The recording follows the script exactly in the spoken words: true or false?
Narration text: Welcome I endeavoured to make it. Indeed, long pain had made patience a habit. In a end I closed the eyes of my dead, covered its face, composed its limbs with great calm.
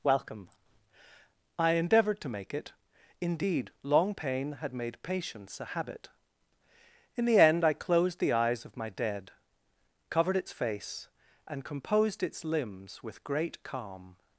false